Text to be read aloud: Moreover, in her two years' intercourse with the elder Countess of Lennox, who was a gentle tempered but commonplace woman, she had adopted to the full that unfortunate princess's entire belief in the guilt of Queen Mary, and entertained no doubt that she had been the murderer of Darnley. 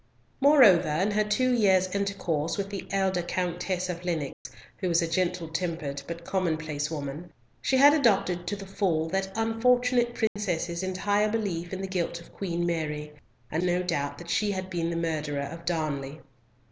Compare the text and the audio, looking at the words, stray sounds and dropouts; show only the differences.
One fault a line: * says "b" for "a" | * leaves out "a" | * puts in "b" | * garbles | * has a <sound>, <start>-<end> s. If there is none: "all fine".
* has a dropout, 4.3-4.5 s
* has a dropout, 10.3-10.4 s
* leaves out "entertained"